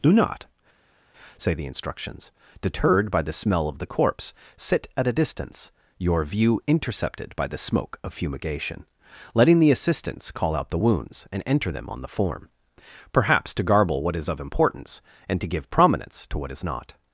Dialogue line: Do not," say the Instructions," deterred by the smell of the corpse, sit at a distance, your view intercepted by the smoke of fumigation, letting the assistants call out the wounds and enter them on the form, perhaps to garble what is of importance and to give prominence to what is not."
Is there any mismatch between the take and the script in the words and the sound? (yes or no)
no